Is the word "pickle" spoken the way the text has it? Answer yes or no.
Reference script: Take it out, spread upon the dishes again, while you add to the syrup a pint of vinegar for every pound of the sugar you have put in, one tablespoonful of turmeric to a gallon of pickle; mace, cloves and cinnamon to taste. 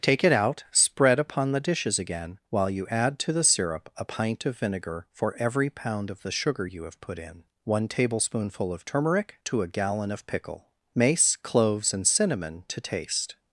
yes